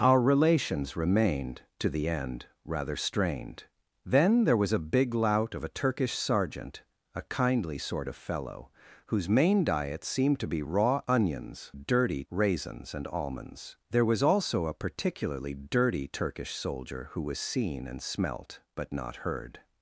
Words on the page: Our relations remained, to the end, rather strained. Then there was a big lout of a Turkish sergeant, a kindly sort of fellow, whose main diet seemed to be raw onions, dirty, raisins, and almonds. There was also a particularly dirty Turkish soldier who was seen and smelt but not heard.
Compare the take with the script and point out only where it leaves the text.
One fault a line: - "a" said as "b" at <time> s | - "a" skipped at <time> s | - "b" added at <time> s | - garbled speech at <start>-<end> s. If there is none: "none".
none